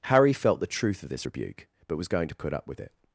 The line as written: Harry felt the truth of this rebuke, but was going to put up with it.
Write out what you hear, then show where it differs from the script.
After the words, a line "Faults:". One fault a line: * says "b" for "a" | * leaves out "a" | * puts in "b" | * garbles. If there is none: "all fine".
Harry felt the truth of this rebuke, but was going to put up with it.
Faults:
all fine